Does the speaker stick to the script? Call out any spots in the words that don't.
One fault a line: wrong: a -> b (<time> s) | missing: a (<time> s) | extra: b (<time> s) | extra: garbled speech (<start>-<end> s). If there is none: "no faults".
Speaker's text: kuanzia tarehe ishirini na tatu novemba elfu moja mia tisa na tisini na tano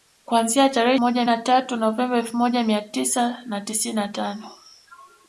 wrong: ishirini -> moja (1.0 s)